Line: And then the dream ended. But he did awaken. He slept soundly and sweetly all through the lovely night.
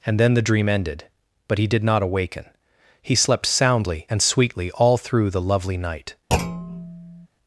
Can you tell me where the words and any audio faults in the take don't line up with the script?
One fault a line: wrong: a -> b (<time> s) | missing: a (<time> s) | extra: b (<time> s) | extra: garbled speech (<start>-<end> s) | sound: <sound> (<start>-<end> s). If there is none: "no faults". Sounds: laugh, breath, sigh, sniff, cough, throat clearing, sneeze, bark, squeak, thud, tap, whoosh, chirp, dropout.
extra: not (1.8 s)
sound: thud (6.3-7.3 s)